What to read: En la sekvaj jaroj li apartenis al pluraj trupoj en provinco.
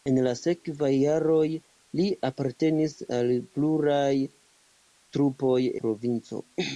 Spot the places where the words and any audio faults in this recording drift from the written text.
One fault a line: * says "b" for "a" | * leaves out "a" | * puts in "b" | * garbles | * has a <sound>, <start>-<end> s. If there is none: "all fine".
* leaves out "en"